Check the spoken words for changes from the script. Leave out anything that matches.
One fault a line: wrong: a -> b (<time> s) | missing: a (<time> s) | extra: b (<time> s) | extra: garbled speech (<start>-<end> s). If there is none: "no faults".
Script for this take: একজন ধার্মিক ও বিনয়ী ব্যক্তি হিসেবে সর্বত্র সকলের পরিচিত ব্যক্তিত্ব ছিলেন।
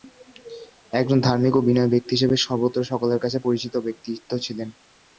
extra: কাছে (3.2 s)